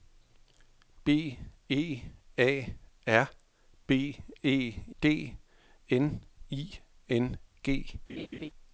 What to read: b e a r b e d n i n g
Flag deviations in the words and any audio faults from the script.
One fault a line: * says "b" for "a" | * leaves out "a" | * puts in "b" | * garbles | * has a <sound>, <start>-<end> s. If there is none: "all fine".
* has a laugh, 8.1-8.5 s